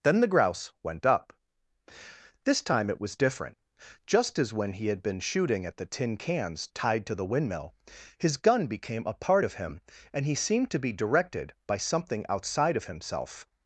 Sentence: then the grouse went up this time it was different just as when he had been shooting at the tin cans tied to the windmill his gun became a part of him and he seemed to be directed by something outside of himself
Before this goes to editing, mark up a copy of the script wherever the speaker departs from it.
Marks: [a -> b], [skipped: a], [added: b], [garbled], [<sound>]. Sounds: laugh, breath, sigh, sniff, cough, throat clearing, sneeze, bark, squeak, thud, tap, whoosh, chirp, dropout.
then the grouse went up this time it was different just as when he had been shooting at the tin cans tied to the windmill his gun became a part of him and he seemed to be directed by something outside of himself